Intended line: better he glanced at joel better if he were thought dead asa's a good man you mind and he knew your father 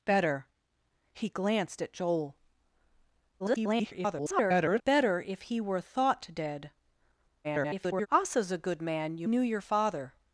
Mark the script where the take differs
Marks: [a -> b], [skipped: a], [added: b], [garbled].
better he glanced at joel [garbled] better if he were thought dead [garbled] asa's a good man you [skipped: mind and he] knew your father